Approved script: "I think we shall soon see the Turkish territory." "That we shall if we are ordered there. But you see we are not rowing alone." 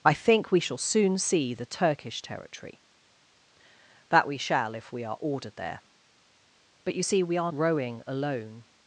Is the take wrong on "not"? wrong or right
wrong